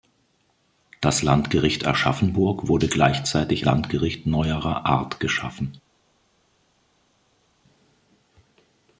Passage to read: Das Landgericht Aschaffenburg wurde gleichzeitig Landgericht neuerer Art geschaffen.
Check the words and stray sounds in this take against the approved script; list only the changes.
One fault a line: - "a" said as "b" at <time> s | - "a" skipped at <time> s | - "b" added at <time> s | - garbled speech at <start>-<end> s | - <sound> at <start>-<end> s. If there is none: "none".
none